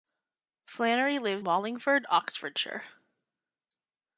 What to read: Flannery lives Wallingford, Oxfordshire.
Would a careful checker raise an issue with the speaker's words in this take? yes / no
no